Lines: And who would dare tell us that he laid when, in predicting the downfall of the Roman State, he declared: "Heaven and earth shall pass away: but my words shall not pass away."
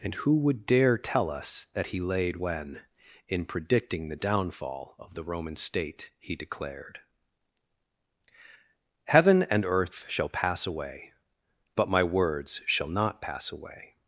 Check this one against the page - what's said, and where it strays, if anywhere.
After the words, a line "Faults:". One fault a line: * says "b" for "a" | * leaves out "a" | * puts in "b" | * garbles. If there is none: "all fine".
And who would dare tell us that he laid when, in predicting the downfall of the Roman State, he declared: "Heaven and earth shall pass away: but my words shall not pass away."
Faults:
all fine